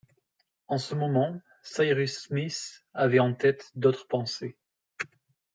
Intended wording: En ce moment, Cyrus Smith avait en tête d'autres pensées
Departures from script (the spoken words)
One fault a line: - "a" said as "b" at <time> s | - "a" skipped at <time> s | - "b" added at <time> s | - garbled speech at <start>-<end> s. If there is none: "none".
none